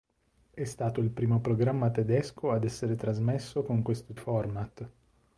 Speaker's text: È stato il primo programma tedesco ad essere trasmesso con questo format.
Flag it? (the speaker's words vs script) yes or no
no